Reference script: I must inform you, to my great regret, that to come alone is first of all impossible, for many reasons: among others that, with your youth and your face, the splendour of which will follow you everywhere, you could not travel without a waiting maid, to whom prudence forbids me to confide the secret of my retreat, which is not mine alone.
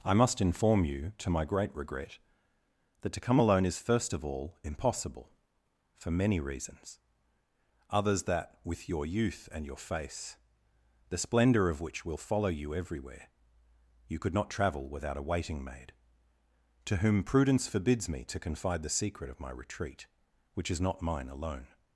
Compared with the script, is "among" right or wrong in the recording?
wrong